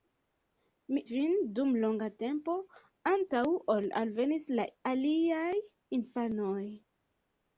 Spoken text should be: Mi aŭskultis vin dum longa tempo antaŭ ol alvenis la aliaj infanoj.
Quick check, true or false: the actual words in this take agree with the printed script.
false